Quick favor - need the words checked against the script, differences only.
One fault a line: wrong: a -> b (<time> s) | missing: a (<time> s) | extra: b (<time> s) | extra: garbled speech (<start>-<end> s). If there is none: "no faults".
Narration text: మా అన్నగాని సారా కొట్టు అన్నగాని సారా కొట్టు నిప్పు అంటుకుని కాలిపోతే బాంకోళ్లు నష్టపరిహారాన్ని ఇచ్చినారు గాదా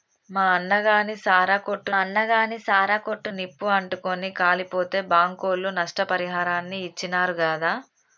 no faults